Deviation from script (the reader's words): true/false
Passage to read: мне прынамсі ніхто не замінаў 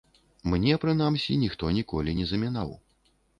true